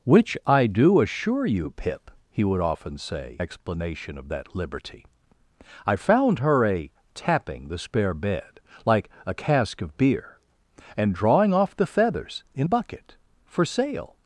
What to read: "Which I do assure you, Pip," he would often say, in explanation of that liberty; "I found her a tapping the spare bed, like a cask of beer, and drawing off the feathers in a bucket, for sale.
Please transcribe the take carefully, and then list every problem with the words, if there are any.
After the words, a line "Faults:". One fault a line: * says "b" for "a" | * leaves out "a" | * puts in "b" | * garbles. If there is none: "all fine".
"Which I do assure you, Pip," he would often say, explanation of that liberty; "I found her a tapping the spare bed, like a cask of beer, and drawing off the feathers in bucket, for sale.
Faults:
* leaves out "in"
* leaves out "a"